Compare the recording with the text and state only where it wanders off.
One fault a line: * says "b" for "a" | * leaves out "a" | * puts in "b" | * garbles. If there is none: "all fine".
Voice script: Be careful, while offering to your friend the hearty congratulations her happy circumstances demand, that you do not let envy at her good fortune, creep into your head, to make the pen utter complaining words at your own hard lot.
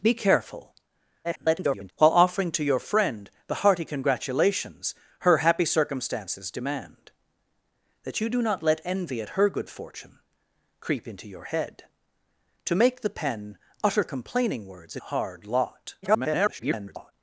* garbles
* leaves out "at your own"
* garbles